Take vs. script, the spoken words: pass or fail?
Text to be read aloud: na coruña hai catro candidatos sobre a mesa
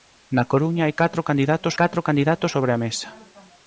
fail